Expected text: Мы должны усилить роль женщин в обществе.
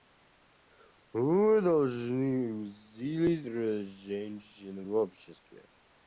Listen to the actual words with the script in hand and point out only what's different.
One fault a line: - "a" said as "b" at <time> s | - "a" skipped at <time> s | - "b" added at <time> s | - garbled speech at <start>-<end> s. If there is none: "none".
none